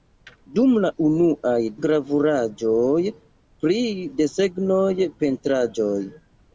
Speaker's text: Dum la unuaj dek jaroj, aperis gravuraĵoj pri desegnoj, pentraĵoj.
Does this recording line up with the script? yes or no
no